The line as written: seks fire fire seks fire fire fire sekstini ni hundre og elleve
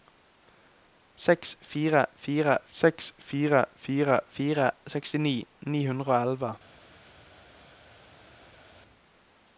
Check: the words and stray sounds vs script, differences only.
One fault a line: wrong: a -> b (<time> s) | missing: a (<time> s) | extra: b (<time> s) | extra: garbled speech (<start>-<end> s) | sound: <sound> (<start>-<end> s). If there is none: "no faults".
no faults